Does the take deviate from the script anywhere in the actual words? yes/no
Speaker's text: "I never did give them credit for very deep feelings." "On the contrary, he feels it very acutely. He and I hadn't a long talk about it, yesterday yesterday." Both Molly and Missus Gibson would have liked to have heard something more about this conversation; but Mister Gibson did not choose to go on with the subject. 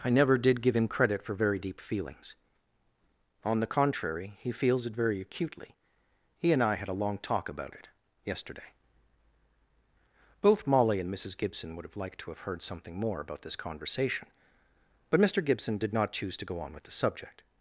yes